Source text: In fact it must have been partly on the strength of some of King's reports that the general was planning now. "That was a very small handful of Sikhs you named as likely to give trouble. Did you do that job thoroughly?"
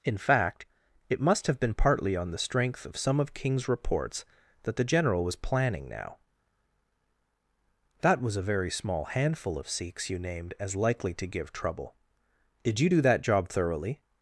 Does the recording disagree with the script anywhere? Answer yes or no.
no